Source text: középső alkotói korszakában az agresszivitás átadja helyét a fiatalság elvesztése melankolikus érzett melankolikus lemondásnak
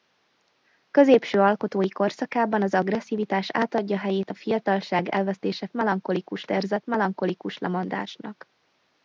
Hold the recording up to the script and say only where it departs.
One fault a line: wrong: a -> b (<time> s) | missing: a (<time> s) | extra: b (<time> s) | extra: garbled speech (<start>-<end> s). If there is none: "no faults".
no faults